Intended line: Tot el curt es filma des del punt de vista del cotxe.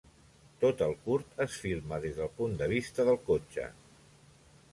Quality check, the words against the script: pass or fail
pass